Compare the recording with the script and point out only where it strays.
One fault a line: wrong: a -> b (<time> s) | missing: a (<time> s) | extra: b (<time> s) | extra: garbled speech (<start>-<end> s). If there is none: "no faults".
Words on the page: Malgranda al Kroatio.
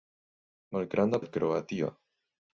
no faults